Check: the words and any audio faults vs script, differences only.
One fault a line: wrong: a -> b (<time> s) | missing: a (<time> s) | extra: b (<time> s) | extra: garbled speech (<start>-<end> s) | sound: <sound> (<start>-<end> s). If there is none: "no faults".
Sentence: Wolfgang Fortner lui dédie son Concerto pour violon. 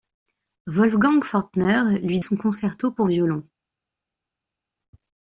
missing: dédie (2.2 s)